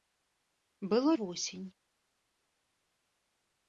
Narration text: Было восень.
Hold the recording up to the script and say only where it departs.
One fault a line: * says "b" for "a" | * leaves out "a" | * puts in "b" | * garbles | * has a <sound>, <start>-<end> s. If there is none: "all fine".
all fine